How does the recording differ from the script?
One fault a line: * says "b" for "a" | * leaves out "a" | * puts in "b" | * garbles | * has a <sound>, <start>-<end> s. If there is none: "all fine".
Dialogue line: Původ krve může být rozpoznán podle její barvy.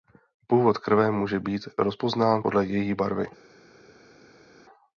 all fine